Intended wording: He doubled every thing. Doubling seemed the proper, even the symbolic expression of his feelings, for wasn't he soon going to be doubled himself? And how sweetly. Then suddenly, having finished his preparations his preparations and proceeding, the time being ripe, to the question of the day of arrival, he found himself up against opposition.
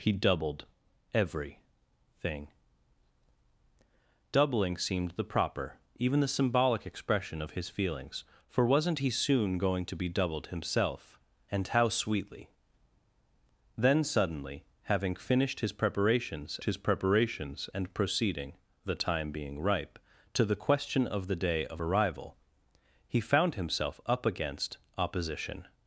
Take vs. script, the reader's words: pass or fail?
pass